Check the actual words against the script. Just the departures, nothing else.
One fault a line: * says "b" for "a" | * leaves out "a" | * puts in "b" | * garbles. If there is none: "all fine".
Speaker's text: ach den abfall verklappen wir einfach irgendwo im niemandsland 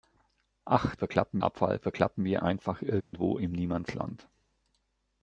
* says "verklappen" for "den"